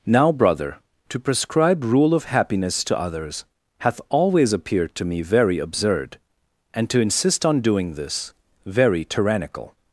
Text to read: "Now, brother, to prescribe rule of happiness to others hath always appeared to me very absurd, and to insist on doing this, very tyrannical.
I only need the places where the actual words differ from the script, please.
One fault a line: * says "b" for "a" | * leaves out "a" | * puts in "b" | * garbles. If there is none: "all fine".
all fine